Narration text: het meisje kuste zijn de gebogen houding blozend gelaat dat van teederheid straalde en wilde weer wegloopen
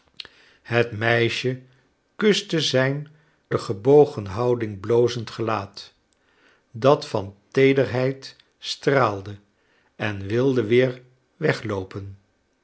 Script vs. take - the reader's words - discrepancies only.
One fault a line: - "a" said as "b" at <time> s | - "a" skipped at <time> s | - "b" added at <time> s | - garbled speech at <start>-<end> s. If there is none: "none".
none